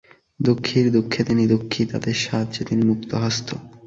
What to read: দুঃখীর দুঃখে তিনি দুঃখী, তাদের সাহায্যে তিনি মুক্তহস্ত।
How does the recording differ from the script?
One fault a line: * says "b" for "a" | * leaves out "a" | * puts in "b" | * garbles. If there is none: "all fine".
all fine